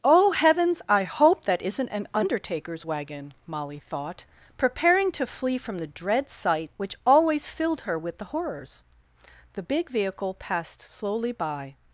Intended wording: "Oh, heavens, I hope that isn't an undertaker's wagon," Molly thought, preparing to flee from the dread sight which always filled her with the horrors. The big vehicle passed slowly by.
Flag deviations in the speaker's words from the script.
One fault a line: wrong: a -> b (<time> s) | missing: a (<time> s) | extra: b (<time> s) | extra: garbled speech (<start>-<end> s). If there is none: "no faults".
no faults